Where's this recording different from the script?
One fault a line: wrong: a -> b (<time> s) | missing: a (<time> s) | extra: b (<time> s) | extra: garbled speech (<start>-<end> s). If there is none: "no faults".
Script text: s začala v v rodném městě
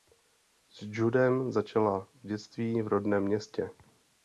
extra: judem (0.8 s)
extra: dětství (2.3 s)